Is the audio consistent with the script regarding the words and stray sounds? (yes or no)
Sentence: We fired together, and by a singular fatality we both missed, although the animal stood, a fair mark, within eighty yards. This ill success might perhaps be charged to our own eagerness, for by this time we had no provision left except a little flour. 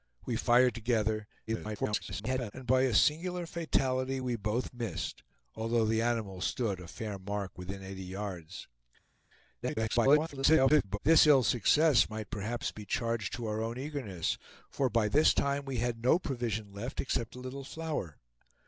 no